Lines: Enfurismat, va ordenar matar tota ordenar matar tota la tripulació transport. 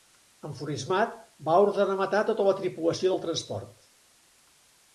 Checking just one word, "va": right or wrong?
right